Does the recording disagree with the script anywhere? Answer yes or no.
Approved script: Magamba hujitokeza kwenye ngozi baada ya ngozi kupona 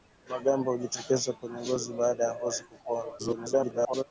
yes